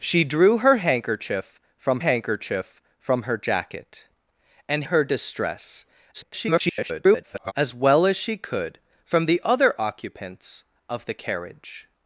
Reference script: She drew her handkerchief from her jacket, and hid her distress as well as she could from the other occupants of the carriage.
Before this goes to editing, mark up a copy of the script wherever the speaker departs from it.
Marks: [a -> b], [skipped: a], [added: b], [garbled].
She drew her handkerchief from [added: handkerchief from] her jacket, and [skipped: hid] her distress [garbled] as well as she could from the other occupants of the carriage.